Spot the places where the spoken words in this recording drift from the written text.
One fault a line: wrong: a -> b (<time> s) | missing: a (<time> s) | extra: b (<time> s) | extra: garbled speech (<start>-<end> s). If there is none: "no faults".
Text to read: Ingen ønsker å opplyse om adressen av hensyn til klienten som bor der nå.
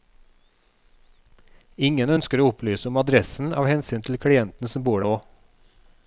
missing: der (5.0 s)